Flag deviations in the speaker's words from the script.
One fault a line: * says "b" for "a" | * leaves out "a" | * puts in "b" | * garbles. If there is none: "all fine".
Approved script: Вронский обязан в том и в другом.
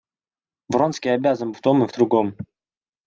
all fine